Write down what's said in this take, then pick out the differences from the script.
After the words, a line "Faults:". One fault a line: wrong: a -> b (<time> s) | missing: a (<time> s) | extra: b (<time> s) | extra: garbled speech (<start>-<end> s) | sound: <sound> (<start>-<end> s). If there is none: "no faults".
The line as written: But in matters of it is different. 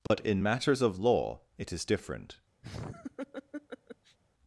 But in matters of law it is different.
Faults:
sound: dropout (0.1-0.1 s)
extra: law (1.0 s)
sound: laugh (2.6-4.2 s)